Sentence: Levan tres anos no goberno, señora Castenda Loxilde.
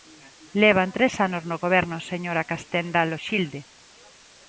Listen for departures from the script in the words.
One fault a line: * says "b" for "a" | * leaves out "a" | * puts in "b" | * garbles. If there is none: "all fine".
all fine